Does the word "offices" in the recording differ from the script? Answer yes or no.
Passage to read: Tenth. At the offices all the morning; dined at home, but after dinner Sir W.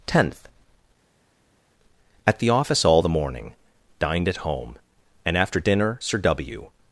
yes